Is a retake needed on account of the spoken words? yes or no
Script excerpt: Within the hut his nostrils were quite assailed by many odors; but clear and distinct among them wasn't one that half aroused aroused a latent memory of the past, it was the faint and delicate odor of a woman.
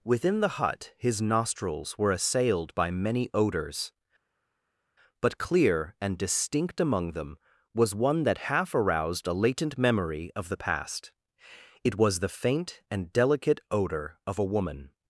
yes